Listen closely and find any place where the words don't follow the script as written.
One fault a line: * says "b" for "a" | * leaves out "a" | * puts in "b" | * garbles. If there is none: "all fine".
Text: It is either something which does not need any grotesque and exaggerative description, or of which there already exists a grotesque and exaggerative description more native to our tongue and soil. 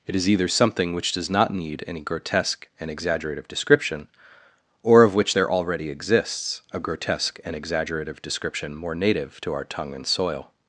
all fine